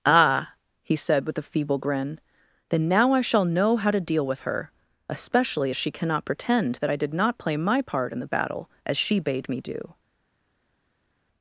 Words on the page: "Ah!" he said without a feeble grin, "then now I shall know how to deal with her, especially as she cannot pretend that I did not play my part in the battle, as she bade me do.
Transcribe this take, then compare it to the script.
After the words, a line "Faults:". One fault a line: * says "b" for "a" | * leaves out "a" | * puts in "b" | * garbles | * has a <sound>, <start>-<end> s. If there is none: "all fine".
"Ah!" he said with a feeble grin, "then now I shall know how to deal with her, especially as she cannot pretend that I did not play my part in the battle, as she bade me do.
Faults:
* says "with" for "without"